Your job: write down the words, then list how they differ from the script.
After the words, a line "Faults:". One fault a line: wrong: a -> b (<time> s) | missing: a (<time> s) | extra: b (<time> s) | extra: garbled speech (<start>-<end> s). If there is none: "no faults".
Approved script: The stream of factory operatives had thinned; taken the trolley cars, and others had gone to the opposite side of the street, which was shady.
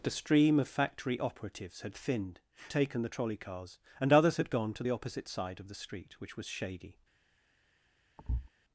The stream of factory operatives had thinned; taken the trolley cars, and others had gone to the opposite side of the street, which was shady.
Faults:
no faults